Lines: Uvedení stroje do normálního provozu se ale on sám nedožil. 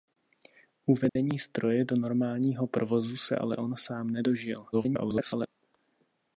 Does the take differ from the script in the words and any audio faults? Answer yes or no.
yes